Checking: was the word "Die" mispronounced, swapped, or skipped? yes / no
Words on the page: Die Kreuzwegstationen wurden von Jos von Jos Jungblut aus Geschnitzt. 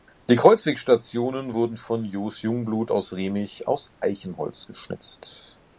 no